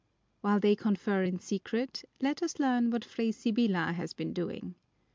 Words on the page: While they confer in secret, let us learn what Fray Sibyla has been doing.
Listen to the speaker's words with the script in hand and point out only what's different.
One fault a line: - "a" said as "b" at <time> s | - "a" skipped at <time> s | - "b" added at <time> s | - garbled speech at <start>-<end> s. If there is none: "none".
none